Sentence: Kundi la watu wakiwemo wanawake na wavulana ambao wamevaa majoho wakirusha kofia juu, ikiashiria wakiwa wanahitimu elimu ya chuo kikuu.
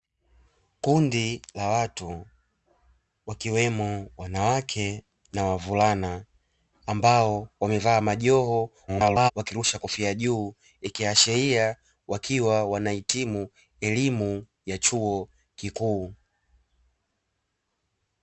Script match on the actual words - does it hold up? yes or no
no